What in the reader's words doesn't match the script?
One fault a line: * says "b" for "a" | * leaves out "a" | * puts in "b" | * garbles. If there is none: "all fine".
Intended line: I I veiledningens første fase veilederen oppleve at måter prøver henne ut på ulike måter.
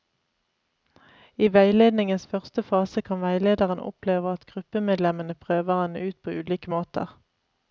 * leaves out "I"
* puts in "kan"
* says "gruppemedlemmene" for "måter"